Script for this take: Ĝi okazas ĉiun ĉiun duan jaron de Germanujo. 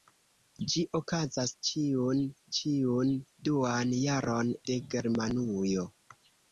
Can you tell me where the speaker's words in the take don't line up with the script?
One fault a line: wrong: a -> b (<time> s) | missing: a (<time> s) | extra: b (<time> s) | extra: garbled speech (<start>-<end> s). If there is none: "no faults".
no faults